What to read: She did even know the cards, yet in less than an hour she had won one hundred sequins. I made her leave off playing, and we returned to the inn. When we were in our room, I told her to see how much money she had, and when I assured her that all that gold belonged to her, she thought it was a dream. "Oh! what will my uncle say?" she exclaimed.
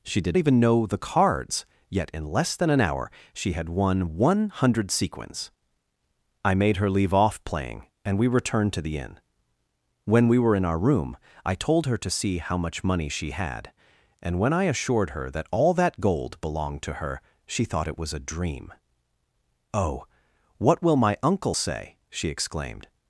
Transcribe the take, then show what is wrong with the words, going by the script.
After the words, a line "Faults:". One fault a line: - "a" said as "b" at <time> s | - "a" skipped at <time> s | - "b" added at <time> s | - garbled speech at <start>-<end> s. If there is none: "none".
She did even know the cards, yet in less than an hour she had won one hundred sequins. I made her leave off playing, and we returned to the inn. When we were in our room, I told her to see how much money she had, and when I assured her that all that gold belonged to her, she thought it was a dream. "Oh! what will my uncle say?" she exclaimed.
Faults:
none